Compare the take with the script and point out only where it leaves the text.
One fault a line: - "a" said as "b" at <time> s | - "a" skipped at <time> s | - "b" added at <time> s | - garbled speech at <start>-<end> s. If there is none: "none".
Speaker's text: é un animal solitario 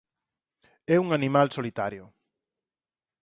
none